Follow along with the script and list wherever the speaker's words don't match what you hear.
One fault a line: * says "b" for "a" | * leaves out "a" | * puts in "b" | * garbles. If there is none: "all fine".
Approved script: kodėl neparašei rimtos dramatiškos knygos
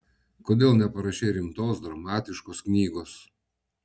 all fine